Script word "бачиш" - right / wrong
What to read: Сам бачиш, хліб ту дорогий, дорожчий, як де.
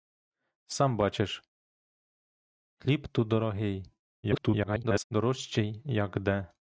right